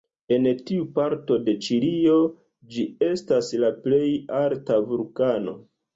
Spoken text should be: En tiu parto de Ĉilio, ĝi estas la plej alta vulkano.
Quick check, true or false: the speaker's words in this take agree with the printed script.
true